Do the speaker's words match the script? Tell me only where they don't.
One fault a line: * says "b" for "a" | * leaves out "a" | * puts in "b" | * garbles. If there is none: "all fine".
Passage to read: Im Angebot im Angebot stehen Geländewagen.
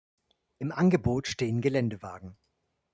* leaves out "im Angebot"